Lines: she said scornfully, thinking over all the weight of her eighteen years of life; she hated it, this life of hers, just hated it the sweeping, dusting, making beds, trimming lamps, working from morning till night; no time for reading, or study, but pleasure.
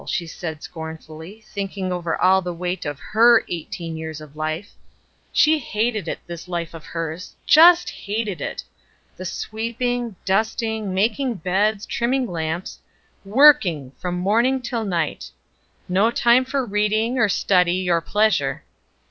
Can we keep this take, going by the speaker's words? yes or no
no